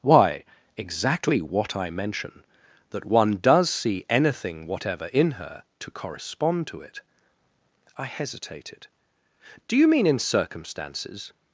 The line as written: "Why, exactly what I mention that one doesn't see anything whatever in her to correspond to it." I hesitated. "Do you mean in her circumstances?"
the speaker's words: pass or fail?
fail